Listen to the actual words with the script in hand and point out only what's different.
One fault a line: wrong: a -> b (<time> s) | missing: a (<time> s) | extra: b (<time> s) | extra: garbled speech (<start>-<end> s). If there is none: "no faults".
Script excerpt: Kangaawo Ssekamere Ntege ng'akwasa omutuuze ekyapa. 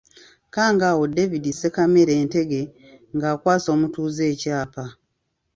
extra: David (1.1 s)